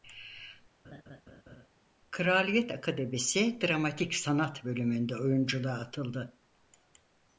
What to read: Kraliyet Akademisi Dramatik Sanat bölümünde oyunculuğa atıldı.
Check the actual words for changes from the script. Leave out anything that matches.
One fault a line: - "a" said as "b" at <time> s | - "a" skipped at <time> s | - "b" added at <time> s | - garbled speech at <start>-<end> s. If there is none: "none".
none